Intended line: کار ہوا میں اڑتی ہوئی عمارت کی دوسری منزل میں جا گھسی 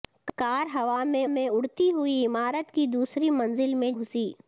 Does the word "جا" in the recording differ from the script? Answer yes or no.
yes